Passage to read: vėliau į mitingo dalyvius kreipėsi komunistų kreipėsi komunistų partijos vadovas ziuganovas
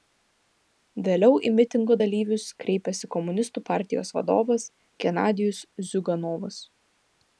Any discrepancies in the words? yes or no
yes